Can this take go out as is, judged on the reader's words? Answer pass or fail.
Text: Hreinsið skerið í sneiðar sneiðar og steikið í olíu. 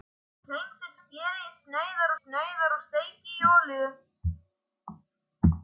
pass